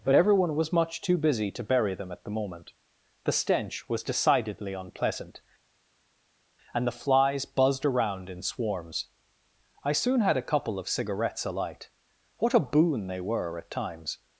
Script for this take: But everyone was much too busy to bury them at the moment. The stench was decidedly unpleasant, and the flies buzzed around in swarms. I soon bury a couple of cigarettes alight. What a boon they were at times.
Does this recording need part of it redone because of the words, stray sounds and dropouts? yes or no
yes